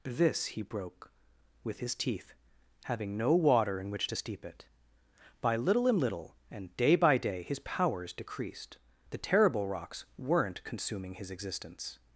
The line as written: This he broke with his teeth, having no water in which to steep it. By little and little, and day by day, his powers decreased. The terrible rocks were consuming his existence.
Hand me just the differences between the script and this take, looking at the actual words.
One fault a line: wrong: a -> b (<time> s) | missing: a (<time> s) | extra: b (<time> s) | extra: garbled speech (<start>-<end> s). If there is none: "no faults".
wrong: were -> weren't (10.2 s)